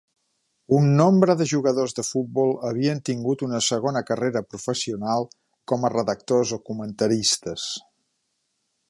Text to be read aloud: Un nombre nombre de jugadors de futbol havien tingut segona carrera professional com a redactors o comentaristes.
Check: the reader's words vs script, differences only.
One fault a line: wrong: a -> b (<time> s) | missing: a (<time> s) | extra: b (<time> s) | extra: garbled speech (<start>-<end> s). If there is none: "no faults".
missing: nombre (1.3 s)
extra: una (3.5 s)